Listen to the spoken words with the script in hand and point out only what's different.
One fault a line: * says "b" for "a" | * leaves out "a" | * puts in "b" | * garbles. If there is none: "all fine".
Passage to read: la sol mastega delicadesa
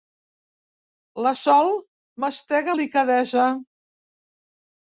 all fine